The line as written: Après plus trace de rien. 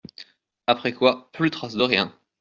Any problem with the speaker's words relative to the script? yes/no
yes